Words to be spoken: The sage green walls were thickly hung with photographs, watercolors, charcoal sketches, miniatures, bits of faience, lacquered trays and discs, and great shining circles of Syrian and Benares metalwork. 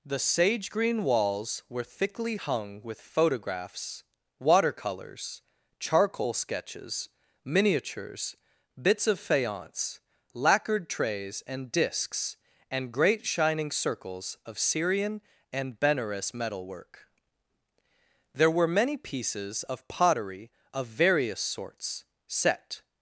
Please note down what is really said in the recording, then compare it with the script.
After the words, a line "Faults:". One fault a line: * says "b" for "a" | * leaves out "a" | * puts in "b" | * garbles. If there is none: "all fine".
The sage green walls were thickly hung with photographs, watercolors, charcoal sketches, miniatures, bits of faience, lacquered trays and discs, and great shining circles of Syrian and Benares metalwork. There were many pieces of pottery of various sorts, set
Faults:
* puts in "There were many pieces of pottery of various sorts set"